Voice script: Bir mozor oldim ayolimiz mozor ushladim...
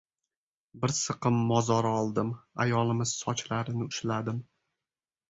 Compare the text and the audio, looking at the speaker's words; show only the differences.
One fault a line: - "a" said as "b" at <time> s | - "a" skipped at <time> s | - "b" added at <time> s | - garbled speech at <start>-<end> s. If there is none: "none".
- "siqim" added at 1.0 s
- "mozor" said as "sochlarini" at 3.2 s